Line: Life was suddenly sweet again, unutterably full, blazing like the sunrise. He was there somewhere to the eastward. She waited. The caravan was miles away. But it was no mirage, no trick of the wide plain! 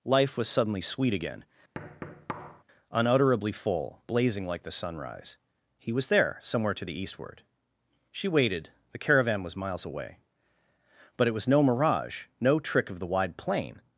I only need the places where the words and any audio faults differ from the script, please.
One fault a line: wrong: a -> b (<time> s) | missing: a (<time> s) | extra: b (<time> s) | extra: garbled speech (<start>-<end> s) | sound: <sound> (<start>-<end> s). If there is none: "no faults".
sound: thud (1.7-2.6 s)